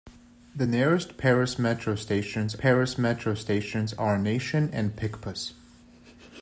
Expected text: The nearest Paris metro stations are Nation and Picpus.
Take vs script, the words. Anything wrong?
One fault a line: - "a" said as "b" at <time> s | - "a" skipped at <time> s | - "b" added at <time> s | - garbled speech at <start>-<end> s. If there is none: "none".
- "Paris metro stations" added at 2.6 s